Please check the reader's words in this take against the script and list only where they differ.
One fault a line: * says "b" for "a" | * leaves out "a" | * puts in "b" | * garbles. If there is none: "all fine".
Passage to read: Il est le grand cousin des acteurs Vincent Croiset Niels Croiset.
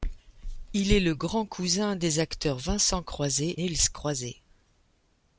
all fine